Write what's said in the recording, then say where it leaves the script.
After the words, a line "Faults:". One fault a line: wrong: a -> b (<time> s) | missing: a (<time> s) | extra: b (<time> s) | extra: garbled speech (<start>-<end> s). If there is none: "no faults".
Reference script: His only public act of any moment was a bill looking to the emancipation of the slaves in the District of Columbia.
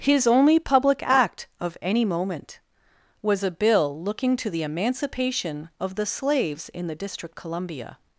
His only public act of any moment was a bill looking to the emancipation of the slaves in the District Columbia.
Faults:
missing: of (7.4 s)